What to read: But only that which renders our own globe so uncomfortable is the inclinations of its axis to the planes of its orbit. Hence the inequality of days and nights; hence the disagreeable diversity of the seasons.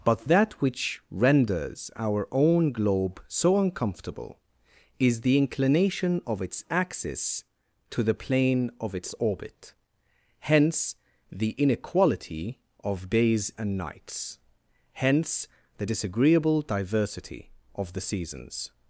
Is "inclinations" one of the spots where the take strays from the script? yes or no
yes